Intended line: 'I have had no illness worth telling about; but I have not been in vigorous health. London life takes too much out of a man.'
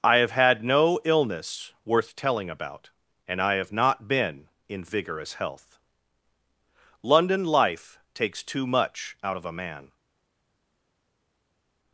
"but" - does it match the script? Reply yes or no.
no